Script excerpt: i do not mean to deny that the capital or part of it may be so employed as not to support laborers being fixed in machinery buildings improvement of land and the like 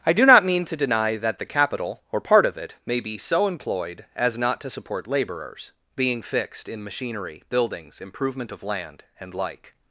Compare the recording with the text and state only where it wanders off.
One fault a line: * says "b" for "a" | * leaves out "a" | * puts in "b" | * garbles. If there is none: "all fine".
* leaves out "the"